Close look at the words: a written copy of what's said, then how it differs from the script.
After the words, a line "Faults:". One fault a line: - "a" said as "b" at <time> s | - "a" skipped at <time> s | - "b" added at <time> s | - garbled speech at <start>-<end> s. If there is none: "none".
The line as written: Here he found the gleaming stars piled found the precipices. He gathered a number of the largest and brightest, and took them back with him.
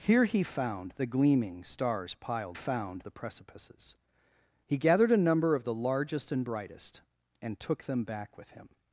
Here he found the gleaming stars piled found the precipices. He gathered a number of the largest and brightest, and took them back with him.
Faults:
none